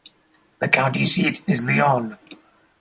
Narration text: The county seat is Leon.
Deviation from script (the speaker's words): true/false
false